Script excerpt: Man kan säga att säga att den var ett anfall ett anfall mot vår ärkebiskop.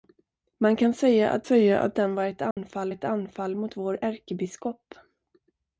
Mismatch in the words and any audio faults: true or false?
true